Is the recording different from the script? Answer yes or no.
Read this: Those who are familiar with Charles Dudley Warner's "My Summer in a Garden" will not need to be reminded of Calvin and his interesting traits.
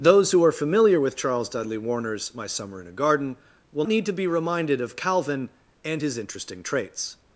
yes